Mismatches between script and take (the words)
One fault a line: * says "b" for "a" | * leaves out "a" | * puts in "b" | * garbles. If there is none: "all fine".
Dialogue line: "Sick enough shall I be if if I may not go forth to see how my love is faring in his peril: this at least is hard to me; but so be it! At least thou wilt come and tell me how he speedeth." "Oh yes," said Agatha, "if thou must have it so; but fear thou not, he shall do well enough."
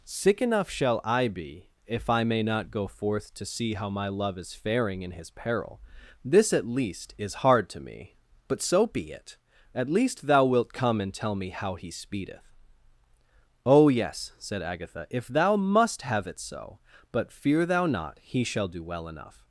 * leaves out "if"